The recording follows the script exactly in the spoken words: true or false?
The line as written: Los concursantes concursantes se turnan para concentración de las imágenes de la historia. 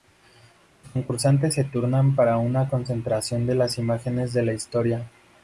false